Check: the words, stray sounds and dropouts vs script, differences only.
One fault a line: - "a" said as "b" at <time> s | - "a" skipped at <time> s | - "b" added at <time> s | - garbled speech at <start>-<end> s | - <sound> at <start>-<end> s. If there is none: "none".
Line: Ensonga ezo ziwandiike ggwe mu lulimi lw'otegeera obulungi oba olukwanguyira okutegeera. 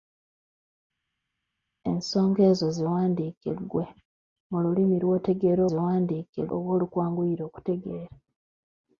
- "obulungi" said as "ziwandiike" at 5.7 s